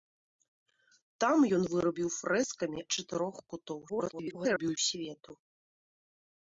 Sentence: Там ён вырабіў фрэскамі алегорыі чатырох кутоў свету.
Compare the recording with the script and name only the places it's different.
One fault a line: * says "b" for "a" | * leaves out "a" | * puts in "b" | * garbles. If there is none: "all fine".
* leaves out "алегорыі"
* garbles